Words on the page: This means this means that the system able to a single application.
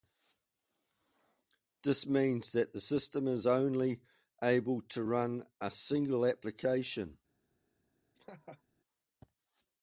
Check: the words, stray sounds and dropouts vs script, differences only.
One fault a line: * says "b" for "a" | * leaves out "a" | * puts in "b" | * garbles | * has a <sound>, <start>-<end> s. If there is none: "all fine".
* leaves out "this means"
* puts in "is only"
* puts in "run"
* has a laugh, 8.1-8.6 s